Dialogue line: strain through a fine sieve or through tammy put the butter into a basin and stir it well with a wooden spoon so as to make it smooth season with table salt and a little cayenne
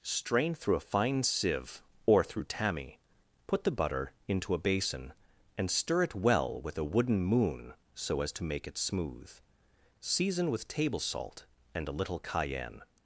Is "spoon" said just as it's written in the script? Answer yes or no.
no